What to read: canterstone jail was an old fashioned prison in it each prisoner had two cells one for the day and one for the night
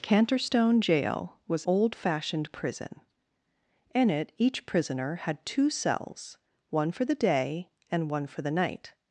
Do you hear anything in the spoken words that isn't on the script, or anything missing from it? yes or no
yes